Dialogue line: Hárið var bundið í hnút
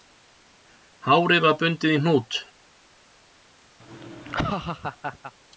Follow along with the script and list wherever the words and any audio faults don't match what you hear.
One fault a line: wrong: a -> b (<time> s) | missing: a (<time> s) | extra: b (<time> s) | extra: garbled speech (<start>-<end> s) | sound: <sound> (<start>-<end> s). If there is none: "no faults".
sound: laugh (3.8-5.3 s)